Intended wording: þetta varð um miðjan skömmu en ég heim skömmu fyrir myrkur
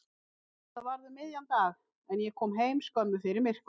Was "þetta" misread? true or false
false